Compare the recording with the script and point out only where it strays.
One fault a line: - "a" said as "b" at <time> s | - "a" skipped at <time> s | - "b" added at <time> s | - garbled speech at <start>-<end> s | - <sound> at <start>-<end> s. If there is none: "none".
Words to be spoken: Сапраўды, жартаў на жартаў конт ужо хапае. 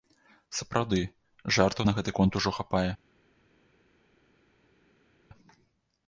- "жартаў" said as "гэты" at 2.0 s